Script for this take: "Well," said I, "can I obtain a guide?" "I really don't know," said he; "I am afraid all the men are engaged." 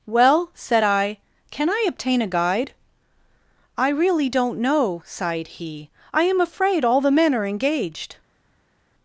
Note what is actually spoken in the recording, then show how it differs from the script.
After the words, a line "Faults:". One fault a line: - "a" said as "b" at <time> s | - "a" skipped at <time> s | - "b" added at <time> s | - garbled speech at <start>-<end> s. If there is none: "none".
"Well," said I, "can I obtain a guide?" "I really don't know," sighed he; "I am afraid all the men are engaged."
Faults:
- "said" said as "sighed" at 5.0 s